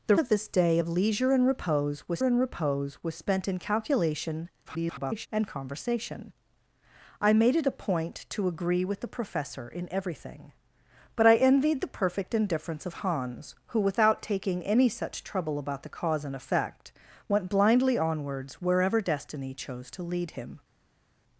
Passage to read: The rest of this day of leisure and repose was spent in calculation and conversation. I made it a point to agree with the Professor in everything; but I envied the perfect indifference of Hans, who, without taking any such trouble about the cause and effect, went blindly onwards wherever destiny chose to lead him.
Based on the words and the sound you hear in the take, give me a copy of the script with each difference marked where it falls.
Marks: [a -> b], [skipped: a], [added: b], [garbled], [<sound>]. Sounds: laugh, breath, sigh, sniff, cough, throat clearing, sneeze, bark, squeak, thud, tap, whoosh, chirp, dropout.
The [skipped: rest] of this day of leisure and repose was [added: and repose was] spent in calculation [garbled] and conversation. I made it a point to agree with the Professor in everything; but I envied the perfect indifference of Hans, who, without taking any such trouble about the cause and effect, went blindly onwards wherever destiny chose to lead him.